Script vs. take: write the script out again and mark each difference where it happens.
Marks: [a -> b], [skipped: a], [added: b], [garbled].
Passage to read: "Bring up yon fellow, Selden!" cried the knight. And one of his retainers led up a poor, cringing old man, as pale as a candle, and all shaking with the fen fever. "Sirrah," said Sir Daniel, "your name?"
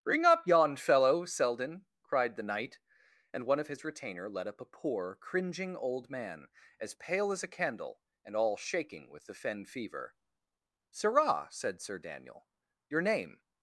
"Bring up yon fellow, Selden!" cried the knight. And one of his [retainers -> retainer] led up a poor, cringing old man, as pale as a candle, and all shaking with the fen fever. "Sirrah," said Sir Daniel, "your name?"